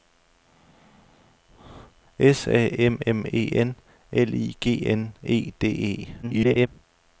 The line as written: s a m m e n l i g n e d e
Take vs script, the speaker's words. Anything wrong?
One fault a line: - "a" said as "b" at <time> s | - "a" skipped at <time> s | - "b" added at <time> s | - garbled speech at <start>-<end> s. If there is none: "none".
- garbled speech at 6.2-6.7 s